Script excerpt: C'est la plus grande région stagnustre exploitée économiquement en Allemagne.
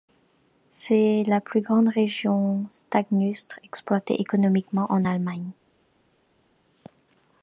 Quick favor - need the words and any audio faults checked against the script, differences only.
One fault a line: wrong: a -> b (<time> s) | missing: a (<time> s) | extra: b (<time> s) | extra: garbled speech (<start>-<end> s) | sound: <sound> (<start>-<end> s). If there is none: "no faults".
no faults